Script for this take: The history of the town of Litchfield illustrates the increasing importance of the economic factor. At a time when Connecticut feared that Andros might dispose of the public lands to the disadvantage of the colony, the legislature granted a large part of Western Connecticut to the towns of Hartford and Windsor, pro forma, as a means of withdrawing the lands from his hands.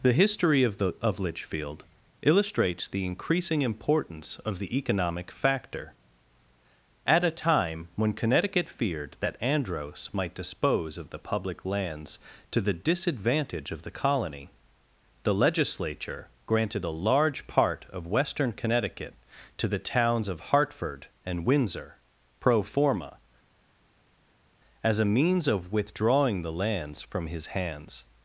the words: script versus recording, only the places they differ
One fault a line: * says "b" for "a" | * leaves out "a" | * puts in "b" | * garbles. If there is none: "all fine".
* leaves out "town"